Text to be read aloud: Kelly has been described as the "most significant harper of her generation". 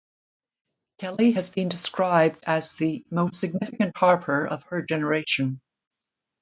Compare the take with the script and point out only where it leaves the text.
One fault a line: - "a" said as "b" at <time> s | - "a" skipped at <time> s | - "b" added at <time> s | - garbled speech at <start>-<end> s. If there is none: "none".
none